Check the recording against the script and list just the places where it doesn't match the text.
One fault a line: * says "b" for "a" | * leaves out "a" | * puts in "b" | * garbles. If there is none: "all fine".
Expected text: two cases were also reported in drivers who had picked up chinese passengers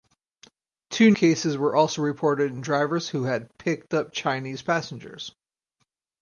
all fine